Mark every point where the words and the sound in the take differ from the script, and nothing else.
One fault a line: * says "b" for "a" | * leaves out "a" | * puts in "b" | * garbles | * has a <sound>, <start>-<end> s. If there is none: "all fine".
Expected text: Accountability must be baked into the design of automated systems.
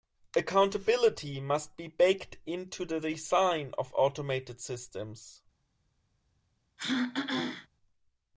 * has a throat clearing, 6.8-7.7 s